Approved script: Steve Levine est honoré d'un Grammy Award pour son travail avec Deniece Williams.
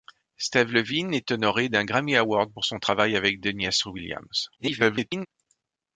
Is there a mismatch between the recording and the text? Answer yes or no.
yes